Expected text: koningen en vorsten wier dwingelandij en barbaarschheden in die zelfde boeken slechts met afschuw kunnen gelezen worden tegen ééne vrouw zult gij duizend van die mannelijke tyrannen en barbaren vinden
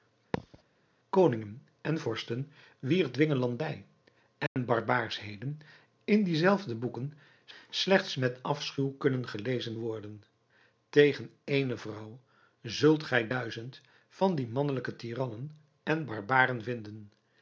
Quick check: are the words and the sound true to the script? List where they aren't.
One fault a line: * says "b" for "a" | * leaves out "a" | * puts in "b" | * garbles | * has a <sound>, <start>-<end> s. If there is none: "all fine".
* has a thud, 0.3-0.6 s
* has a dropout, 4.5-4.6 s